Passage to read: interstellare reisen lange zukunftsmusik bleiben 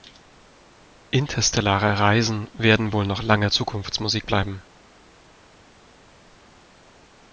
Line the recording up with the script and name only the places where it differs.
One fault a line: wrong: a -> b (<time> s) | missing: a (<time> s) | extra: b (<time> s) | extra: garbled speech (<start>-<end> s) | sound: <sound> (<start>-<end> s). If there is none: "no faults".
extra: werden wohl noch (2.5 s)